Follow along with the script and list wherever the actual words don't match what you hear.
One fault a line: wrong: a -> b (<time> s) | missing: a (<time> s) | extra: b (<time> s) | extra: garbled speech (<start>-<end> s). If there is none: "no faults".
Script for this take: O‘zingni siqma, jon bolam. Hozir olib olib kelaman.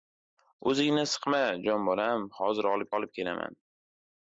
no faults